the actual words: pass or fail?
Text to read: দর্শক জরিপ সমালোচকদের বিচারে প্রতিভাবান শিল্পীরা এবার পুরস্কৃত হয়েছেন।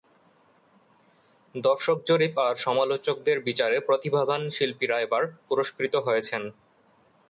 fail